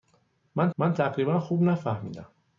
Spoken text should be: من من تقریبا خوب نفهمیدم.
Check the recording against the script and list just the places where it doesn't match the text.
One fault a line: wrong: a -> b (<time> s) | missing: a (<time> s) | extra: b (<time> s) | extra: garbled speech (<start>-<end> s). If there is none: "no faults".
no faults